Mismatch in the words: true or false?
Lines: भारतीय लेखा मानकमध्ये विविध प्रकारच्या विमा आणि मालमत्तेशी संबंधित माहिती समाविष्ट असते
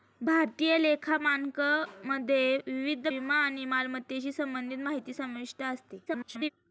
true